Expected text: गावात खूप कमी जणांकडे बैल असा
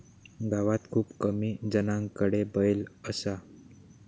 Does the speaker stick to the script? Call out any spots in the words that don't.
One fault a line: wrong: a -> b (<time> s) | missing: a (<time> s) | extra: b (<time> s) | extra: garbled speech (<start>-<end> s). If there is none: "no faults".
no faults